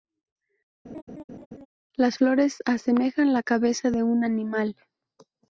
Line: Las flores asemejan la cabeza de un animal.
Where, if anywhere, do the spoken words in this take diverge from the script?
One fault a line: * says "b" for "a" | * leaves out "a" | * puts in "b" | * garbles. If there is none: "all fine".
all fine